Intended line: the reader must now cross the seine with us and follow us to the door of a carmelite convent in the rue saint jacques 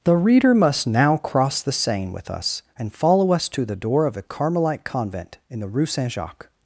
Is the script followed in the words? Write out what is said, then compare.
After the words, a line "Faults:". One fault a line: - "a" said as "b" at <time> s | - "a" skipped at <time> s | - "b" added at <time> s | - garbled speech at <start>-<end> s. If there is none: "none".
the reader must now cross the seine with us and follow us to the door of a carmelite convent in the rue saint jacques
Faults:
none